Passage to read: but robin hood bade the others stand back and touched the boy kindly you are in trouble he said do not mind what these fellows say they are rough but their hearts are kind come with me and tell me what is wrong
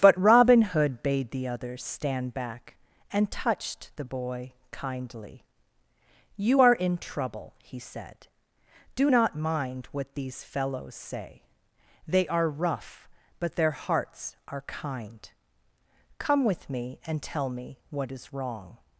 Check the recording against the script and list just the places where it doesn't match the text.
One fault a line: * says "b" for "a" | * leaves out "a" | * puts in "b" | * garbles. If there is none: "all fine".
all fine